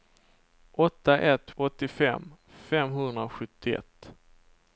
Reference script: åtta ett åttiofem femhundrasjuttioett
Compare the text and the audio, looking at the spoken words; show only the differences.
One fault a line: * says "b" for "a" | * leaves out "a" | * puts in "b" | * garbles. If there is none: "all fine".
all fine